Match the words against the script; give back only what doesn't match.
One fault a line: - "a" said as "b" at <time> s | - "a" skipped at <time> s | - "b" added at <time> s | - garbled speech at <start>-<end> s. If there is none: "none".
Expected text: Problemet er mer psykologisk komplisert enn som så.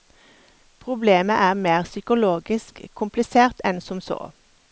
none